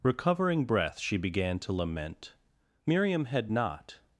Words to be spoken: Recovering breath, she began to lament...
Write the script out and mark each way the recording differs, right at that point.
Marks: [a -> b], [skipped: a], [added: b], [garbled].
Recovering breath, she began to lament... [added: Miriam had not]